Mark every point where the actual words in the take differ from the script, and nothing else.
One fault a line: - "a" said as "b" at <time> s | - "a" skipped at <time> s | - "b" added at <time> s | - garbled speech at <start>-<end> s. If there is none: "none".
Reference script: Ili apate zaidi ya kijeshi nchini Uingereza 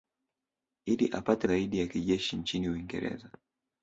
none